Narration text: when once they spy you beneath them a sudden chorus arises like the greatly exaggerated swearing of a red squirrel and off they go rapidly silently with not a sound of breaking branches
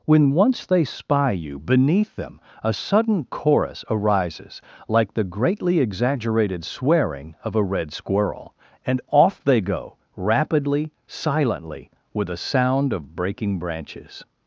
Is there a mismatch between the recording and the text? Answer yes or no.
yes